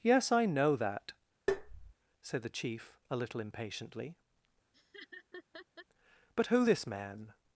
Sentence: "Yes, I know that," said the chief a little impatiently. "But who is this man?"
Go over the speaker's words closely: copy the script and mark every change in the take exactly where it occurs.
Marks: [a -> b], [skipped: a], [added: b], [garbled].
"Yes, I know that," said the chief a little impatiently. "But who [skipped: is] this man?"